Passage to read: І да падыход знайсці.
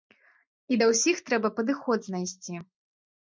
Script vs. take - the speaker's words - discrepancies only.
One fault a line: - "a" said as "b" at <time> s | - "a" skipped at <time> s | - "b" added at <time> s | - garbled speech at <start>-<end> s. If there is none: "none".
- "ўсіх трэба" added at 0.9 s